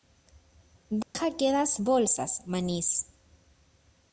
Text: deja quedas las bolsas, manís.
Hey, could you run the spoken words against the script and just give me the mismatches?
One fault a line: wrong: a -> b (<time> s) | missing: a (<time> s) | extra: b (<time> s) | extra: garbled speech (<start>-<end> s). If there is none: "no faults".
missing: las (1.8 s)